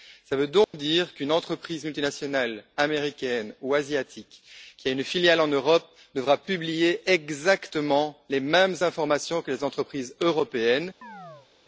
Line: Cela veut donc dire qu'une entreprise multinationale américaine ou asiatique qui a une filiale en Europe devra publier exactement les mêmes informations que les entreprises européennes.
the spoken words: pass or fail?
pass